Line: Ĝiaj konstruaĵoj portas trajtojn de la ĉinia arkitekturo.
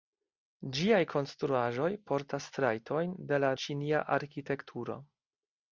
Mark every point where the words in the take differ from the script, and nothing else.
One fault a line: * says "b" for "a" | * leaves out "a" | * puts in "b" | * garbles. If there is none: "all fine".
all fine